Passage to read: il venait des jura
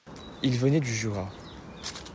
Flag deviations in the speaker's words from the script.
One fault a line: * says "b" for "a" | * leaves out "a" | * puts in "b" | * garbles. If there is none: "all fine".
* says "du" for "des"